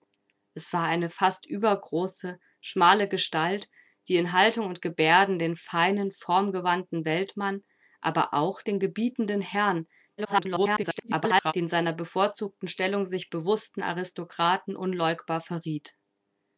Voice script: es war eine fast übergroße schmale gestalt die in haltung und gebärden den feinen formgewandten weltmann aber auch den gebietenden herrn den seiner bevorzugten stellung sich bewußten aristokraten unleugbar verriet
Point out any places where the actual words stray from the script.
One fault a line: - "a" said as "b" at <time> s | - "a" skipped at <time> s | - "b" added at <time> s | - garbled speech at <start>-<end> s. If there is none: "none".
- garbled speech at 10.2-11.5 s